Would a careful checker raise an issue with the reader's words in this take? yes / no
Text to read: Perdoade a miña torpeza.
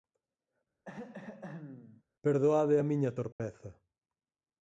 no